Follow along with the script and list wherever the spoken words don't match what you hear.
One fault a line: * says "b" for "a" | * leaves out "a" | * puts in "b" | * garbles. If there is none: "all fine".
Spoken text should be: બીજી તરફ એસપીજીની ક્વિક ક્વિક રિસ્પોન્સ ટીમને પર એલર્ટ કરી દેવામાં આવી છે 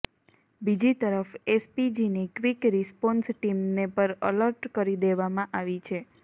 * leaves out "ક્વિક"